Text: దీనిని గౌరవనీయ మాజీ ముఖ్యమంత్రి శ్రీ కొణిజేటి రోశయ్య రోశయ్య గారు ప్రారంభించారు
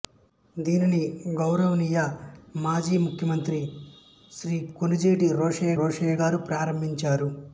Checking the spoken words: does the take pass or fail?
pass